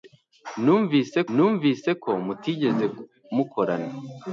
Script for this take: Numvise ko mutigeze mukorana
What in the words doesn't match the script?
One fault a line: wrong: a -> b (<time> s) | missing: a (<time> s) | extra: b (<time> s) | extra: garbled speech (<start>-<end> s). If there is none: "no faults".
extra: numvise (1.3 s)